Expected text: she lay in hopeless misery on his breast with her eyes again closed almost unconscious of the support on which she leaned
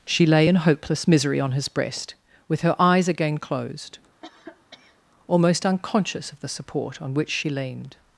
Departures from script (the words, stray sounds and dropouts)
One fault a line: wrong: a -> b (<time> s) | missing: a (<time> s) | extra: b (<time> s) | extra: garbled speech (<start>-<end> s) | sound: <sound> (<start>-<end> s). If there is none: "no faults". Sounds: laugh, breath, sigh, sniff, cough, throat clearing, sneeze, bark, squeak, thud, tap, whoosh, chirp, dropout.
sound: cough (4.2-5.0 s)